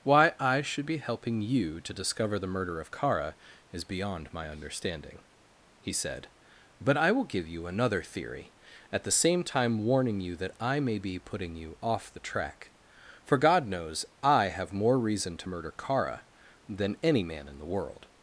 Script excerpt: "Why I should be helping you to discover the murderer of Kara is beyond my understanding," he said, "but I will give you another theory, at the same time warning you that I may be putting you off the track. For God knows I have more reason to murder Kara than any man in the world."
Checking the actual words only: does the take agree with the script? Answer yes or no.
no